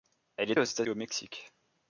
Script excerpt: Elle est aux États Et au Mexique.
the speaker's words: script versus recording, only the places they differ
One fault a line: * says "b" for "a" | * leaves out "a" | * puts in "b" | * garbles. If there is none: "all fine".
all fine